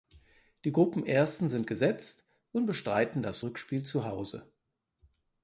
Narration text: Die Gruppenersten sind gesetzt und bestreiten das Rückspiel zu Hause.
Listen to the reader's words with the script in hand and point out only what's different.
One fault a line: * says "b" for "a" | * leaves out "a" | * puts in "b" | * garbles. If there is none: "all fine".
all fine